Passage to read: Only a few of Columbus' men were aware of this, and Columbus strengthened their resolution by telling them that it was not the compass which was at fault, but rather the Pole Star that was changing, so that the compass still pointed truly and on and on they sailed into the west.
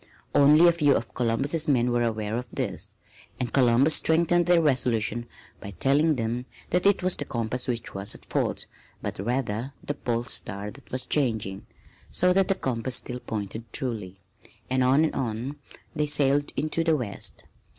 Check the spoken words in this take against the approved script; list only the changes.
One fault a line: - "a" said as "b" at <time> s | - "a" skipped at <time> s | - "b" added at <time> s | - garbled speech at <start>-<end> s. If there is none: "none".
- "not" skipped at 7.2 s